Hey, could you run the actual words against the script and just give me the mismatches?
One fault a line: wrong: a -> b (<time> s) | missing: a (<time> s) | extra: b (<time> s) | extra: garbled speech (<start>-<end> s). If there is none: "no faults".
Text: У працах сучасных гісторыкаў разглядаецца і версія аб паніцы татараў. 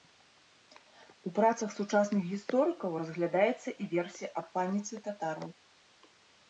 no faults